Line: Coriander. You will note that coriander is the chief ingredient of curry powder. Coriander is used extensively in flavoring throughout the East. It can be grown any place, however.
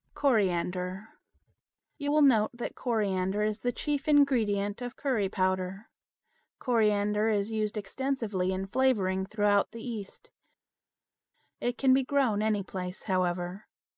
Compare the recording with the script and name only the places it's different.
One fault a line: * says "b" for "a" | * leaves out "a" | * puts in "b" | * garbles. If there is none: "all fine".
all fine